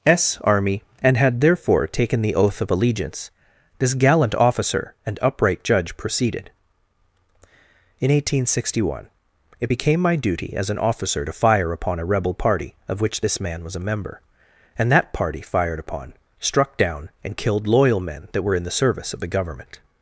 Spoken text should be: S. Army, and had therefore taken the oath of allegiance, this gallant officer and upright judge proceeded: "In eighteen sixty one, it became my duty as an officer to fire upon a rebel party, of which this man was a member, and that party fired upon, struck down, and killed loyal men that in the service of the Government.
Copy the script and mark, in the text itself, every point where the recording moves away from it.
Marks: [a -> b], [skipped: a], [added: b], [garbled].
S. Army, and had therefore taken the oath of allegiance, this gallant officer and upright judge proceeded: "In eighteen sixty one, it became my duty as an officer to fire upon a rebel party, of which this man was a member, and that party fired upon, struck down, and killed loyal men that [added: were] in the service of the Government.